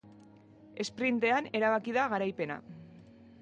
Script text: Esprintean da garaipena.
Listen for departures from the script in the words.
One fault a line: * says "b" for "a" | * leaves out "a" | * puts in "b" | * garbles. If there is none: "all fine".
* puts in "erabaki"